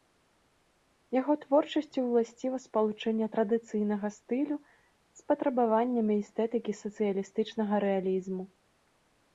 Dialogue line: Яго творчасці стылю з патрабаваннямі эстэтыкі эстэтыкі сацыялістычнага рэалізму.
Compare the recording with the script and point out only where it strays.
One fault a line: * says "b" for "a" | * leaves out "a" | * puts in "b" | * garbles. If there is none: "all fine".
* puts in "ўласціва спалучэнне традыцыйнага"
* leaves out "эстэтыкі"